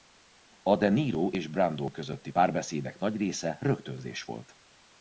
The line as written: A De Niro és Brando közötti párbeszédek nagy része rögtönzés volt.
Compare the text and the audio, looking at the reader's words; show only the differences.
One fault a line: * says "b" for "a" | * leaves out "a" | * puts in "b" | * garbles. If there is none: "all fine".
all fine